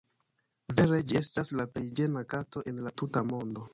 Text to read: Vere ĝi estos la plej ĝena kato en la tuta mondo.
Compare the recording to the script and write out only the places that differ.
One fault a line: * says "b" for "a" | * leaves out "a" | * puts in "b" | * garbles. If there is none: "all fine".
* says "estas" for "estos"